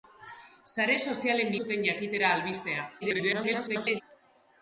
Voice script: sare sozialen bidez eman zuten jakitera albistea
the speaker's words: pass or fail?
fail